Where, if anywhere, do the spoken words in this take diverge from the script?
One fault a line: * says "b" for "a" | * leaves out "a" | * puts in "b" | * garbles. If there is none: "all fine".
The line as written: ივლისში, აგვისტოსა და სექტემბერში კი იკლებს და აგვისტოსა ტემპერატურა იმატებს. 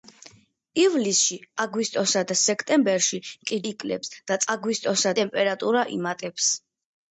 all fine